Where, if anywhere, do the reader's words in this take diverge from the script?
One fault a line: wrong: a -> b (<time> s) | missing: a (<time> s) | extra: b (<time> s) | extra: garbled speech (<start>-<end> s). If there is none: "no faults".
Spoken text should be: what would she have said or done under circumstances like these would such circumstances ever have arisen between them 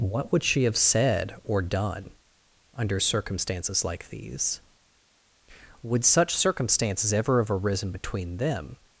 no faults